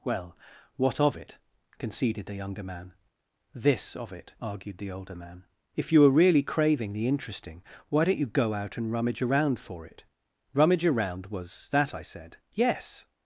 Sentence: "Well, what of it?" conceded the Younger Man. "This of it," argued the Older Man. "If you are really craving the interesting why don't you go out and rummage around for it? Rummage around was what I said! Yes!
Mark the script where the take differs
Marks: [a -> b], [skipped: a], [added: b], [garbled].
"Well, what of it?" conceded the Younger Man. "This of it," argued the Older Man. "If you are really craving the interesting why don't you go out and rummage around for it? Rummage around was [what -> that] I said! Yes!